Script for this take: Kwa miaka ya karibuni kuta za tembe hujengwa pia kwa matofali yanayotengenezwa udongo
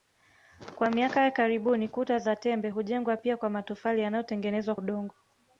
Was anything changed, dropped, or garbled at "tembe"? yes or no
no